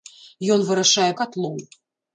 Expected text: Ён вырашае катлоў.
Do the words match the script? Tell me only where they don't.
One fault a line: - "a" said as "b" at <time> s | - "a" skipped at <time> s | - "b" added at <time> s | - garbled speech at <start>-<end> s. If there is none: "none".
none